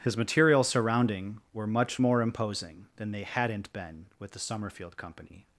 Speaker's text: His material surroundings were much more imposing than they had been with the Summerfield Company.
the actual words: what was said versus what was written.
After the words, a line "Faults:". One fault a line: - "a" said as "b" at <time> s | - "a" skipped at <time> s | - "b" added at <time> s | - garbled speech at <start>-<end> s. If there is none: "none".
His material surrounding were much more imposing than they hadn't been with the Summerfield Company.
Faults:
- "surroundings" said as "surrounding" at 0.6 s
- "had" said as "hadn't" at 3.2 s